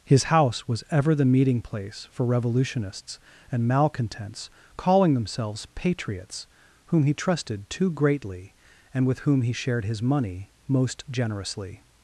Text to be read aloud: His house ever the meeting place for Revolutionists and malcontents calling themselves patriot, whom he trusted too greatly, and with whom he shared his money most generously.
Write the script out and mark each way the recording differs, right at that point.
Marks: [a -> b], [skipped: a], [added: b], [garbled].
His house [added: was] ever the meeting place for Revolutionists and malcontents calling themselves [patriot, -> patriots] whom he trusted too greatly, and with whom he shared his money most generously.